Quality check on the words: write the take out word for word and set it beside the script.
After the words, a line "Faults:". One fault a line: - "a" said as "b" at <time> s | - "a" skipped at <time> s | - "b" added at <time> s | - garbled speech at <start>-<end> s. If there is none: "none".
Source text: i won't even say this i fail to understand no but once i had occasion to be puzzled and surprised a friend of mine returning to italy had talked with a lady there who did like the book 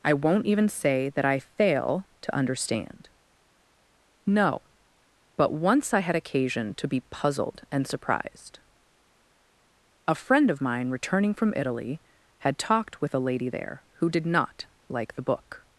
i won't even say that i fail to understand no but once i had occasion to be puzzled and surprised a friend of mine returning from italy had talked with a lady there who did not like the book
Faults:
- "this" said as "that" at 1.1 s
- "to" said as "from" at 11.3 s
- "not" added at 14.3 s